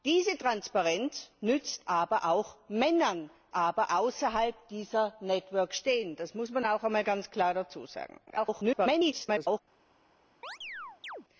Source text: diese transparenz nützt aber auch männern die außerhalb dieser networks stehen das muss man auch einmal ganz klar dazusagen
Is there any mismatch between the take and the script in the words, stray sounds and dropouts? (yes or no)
yes